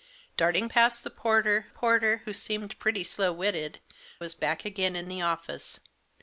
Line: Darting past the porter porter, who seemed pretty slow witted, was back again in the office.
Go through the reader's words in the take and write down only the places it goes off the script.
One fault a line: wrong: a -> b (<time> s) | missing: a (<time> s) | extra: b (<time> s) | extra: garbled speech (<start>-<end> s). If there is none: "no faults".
no faults